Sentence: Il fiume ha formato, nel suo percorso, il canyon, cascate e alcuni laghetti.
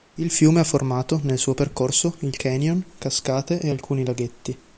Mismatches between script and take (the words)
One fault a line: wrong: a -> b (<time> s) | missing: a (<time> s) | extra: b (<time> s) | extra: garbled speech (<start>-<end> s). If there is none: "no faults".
no faults